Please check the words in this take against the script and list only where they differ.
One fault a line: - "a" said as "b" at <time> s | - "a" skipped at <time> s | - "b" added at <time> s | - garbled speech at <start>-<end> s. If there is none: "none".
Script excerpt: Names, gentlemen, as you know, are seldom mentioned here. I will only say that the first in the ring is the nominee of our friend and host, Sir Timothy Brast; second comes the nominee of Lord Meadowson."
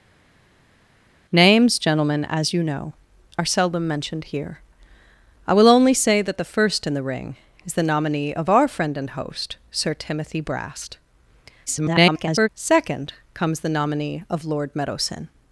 - garbled speech at 11.7-12.5 s